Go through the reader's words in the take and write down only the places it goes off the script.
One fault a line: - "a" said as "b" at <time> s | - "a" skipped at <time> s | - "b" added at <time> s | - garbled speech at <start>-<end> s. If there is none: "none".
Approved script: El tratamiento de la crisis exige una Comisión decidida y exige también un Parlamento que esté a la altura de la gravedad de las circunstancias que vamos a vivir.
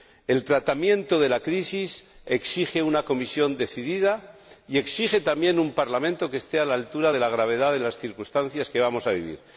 none